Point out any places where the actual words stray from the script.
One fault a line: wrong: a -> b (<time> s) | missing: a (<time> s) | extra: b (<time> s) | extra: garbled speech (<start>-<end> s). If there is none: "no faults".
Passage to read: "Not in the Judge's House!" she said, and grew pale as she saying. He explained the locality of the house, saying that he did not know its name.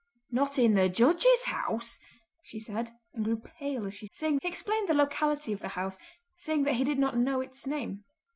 no faults